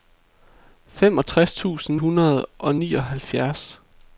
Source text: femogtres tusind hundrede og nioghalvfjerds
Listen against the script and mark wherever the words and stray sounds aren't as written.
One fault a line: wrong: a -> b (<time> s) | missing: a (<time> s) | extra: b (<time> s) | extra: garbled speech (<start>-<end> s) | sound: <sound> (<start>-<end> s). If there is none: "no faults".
no faults